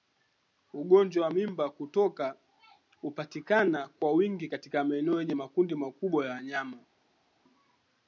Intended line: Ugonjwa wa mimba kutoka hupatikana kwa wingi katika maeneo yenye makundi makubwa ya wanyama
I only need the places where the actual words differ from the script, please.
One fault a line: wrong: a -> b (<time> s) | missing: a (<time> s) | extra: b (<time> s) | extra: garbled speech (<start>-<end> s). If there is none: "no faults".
no faults